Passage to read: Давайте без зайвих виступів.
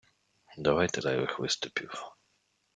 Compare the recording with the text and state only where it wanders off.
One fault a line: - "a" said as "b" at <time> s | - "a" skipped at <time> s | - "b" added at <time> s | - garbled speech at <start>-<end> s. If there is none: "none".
- "без" skipped at 1.0 s